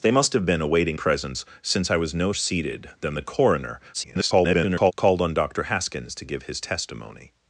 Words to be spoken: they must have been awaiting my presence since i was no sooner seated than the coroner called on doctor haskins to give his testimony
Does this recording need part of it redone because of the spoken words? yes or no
yes